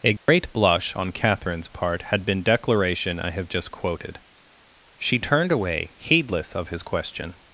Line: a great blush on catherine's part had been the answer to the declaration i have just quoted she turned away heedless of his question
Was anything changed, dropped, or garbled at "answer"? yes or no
yes